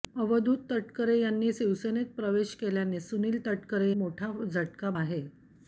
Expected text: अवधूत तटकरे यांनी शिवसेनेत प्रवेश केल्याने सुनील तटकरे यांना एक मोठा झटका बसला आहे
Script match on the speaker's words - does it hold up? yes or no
no